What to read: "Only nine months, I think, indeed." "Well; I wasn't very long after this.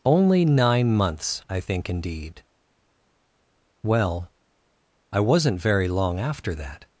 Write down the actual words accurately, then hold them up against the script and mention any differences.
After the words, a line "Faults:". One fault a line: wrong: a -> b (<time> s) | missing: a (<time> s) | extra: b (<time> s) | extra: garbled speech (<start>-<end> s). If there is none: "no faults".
"Only nine months, I think, indeed." "Well; I wasn't very long after that.
Faults:
wrong: this -> that (6.5 s)